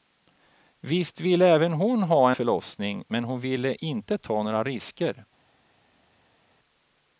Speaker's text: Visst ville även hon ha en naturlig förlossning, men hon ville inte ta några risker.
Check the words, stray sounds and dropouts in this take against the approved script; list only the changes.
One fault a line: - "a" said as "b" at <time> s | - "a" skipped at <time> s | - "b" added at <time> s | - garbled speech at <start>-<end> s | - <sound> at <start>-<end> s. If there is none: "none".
- "en naturlig" skipped at 2.3 s